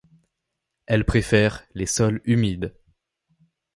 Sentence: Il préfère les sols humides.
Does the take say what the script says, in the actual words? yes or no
no